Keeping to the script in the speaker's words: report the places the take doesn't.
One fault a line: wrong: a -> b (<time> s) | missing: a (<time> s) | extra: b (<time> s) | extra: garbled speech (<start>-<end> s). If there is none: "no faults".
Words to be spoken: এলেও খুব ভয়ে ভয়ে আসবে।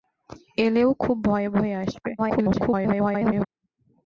extra: garbled speech (2.2-3.5 s)